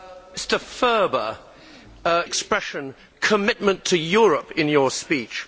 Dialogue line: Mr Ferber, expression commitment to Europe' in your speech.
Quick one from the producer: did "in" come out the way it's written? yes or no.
yes